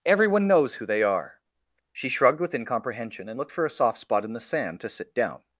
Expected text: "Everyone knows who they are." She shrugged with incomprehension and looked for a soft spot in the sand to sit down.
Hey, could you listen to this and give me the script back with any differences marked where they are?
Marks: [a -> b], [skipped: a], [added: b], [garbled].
"Everyone knows who they are." She shrugged with incomprehension and looked for a soft spot in the sand to sit down.